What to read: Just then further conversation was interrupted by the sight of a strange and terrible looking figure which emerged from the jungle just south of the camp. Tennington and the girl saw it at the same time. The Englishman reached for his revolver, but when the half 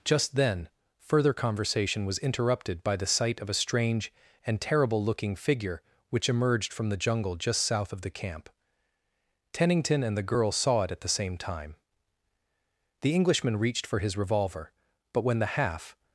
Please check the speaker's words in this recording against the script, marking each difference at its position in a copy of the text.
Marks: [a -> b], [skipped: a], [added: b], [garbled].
Just then further conversation was interrupted by the sight of a strange and terrible looking figure which emerged from the jungle just south of the camp. Tennington and the girl saw it at the same time. The Englishman reached for his revolver, but when the half